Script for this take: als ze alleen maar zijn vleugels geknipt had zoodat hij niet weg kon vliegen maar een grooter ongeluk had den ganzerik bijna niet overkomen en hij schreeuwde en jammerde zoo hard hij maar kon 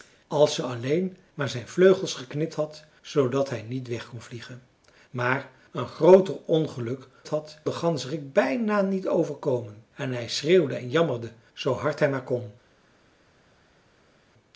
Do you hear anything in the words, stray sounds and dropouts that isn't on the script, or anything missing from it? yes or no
no